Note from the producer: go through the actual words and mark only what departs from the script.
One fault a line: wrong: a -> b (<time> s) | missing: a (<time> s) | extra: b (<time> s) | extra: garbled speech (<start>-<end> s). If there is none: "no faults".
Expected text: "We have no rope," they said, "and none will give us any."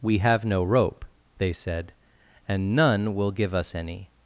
no faults